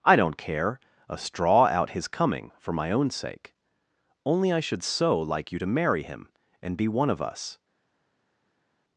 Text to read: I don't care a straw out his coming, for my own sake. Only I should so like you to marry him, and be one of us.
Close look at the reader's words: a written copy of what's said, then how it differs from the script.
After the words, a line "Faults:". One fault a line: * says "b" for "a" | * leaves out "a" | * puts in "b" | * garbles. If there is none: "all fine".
I don't care a straw out his coming, for my own sake. Only I should so like you to marry him, and be one of us.
Faults:
all fine